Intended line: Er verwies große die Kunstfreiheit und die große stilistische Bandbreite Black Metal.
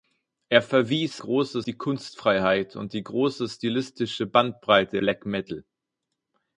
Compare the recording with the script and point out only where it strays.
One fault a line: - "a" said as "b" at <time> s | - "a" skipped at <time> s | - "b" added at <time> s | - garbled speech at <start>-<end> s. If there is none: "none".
none